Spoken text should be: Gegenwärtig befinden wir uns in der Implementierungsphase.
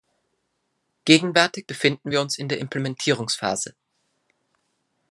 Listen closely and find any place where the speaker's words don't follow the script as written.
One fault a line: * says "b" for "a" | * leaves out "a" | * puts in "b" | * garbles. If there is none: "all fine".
all fine